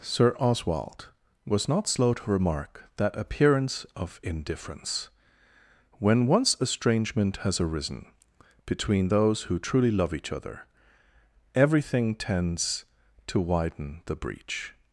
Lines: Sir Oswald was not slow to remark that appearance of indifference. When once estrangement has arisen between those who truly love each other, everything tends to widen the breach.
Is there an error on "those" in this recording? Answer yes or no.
no